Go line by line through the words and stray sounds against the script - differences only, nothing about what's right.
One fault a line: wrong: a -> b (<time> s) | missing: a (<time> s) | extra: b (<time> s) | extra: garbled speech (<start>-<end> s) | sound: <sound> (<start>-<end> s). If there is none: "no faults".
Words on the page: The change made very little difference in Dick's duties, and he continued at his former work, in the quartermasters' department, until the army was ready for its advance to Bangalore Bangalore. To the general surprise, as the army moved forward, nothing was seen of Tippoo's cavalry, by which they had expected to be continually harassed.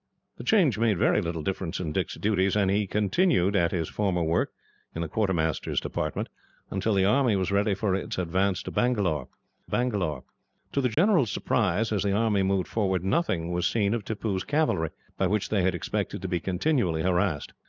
sound: dropout (10.9-11.0 s)